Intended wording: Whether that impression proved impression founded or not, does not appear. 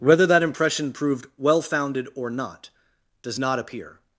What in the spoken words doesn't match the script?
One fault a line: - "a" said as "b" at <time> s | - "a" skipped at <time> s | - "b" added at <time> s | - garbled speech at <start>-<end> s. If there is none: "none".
- "impression" said as "well" at 1.4 s